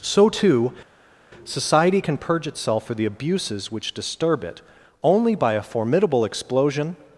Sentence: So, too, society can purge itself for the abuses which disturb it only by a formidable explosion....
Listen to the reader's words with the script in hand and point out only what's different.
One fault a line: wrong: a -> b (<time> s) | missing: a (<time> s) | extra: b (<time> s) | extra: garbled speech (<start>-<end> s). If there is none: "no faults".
no faults